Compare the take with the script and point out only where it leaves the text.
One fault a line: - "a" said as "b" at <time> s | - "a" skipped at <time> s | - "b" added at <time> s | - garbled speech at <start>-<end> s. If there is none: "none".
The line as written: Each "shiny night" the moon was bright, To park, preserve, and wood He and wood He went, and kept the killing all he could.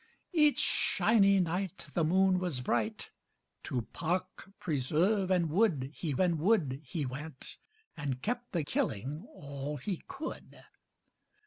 none